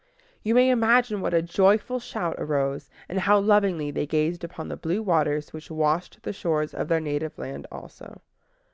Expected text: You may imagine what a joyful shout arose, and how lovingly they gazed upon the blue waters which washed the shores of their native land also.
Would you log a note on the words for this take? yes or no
no